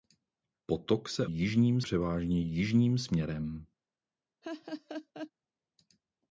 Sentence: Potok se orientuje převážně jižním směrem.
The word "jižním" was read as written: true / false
true